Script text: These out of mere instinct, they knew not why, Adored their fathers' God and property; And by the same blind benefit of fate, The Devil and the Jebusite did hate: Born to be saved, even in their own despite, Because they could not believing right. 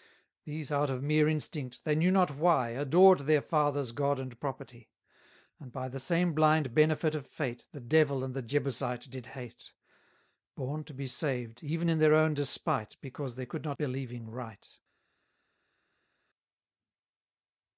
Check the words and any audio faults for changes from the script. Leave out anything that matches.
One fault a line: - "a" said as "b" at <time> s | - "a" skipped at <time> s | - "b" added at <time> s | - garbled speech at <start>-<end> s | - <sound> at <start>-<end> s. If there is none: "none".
none